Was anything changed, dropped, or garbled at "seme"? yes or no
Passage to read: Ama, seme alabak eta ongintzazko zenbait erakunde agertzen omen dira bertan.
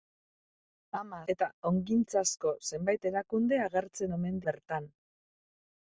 yes